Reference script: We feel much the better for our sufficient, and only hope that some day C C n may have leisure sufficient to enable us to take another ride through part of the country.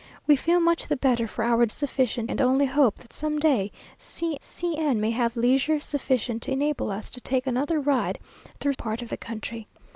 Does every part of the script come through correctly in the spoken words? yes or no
yes